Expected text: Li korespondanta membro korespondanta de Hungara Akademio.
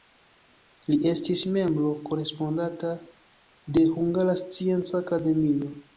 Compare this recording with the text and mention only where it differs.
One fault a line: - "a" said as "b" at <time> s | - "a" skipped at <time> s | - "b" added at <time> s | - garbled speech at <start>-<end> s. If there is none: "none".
- "korespondanta" said as "estis" at 1.1 s
- "Scienca" added at 4.5 s